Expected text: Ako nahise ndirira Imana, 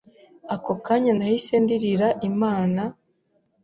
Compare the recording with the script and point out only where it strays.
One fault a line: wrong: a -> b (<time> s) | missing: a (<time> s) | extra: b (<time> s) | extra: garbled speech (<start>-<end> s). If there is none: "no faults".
extra: kanya (0.8 s)